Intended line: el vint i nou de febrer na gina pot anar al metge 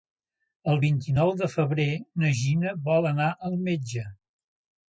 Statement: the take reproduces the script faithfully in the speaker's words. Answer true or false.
false